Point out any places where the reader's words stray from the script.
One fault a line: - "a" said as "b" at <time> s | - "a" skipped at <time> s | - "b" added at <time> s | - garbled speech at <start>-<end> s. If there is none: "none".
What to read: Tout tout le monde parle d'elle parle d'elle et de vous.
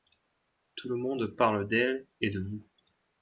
- "tout" skipped at 0.9 s
- "parle d'elle" skipped at 2.1 s